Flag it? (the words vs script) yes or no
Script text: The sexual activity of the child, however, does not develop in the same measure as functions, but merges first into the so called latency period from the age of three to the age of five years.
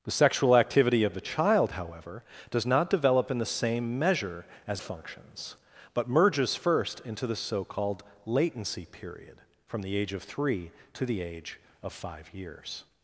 no